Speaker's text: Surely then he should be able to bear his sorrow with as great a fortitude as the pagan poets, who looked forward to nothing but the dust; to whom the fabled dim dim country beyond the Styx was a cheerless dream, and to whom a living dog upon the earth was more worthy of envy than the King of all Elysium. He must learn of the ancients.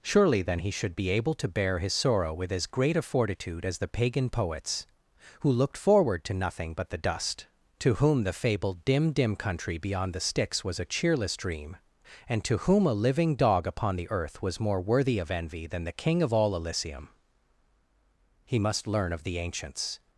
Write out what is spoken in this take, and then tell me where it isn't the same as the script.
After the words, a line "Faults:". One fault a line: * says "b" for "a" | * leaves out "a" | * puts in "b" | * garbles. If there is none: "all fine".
Surely then he should be able to bear his sorrow with as great a fortitude as the pagan poets, who looked forward to nothing but the dust; to whom the fabled dim dim country beyond the Styx was a cheerless dream, and to whom a living dog upon the earth was more worthy of envy than the King of all Elysium. He must learn of the ancients.
Faults:
all fine